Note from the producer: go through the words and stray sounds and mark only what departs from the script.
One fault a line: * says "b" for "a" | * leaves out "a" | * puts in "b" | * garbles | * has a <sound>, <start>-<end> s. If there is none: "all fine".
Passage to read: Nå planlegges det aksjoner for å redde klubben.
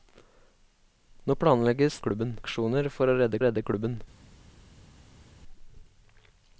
* says "klubben" for "det"
* puts in "redde"